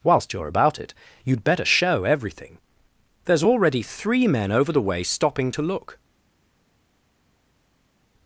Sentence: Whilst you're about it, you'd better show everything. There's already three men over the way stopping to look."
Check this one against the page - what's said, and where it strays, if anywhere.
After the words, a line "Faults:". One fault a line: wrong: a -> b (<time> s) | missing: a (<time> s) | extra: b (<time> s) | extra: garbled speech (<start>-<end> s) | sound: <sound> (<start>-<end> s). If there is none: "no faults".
Whilst you're about it, you'd better show everything. There's already three men over the way stopping to look."
Faults:
no faults